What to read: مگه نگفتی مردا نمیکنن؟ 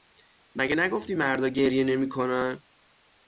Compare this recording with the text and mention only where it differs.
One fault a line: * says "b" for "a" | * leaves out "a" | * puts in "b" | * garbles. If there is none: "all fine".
* puts in "گریه"